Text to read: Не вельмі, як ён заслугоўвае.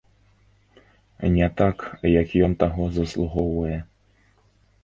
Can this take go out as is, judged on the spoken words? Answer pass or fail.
fail